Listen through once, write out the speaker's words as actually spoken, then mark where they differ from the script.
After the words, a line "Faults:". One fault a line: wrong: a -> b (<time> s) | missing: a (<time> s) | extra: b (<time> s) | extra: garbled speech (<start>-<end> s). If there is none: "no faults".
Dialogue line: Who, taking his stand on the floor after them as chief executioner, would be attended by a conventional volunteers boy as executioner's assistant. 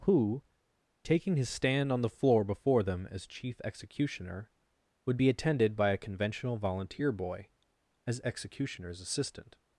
Who, taking his stand on the floor before them as chief executioner, would be attended by a conventional volunteer boy as executioner's assistant.
Faults:
wrong: after -> before (2.4 s)
wrong: volunteers -> volunteer (6.6 s)